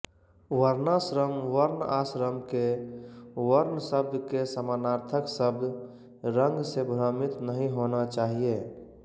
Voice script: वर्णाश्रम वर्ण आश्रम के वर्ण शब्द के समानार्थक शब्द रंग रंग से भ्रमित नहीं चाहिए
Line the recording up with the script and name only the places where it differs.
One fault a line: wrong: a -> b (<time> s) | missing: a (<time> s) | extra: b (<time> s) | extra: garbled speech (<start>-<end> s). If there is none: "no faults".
missing: रंग (6.6 s)
extra: होना (7.8 s)